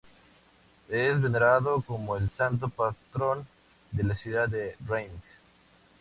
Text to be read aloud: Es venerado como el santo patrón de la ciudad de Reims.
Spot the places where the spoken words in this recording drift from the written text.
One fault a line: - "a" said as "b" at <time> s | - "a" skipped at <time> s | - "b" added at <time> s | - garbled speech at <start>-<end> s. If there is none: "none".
none